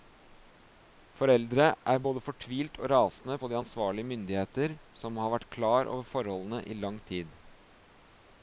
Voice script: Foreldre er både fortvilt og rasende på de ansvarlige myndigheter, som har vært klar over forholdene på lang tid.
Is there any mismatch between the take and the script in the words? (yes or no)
yes